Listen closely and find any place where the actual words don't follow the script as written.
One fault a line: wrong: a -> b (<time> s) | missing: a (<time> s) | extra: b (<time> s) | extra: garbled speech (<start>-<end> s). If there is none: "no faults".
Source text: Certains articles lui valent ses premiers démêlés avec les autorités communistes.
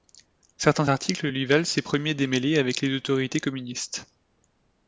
no faults